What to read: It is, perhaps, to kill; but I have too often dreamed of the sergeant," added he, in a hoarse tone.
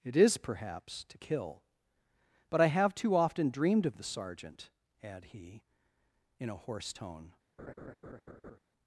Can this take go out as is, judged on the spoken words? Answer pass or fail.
fail